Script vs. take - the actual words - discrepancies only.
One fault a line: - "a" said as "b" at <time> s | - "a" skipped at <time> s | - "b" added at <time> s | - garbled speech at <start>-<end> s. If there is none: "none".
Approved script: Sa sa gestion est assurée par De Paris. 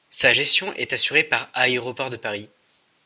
- "sa" skipped at 0.3 s
- "Aéroports" added at 1.5 s